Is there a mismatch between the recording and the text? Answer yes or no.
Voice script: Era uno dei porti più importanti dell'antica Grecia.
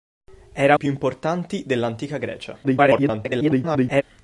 yes